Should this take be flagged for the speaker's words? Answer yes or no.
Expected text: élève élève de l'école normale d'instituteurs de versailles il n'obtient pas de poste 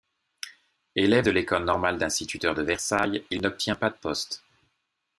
yes